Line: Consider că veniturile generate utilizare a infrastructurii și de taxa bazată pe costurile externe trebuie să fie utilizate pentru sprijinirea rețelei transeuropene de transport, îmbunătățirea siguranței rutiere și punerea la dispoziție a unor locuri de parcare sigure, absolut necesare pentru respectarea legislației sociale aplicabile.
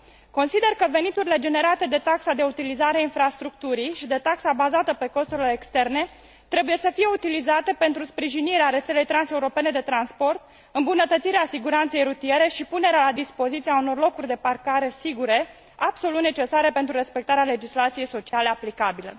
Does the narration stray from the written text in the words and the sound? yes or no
yes